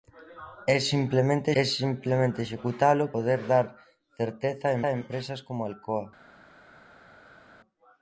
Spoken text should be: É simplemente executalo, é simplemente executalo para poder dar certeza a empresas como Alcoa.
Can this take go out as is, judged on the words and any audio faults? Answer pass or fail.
fail